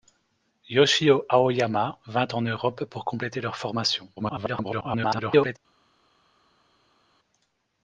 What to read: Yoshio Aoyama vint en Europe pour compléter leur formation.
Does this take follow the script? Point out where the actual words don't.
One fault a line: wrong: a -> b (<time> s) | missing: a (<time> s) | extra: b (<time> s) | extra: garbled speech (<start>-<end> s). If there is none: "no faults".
extra: garbled speech (4.2-5.6 s)